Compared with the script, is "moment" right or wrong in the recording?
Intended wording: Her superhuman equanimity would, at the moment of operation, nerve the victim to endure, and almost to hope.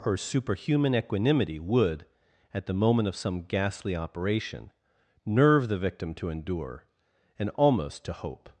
right